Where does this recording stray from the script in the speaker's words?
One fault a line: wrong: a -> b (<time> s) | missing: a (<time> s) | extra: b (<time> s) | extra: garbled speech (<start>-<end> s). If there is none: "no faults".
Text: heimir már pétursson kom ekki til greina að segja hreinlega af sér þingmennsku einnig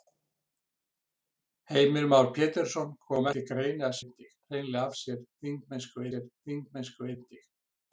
missing: ekki (3.3 s)
wrong: segja -> einnig (4.0 s)
extra: sér þingmennsku (6.1 s)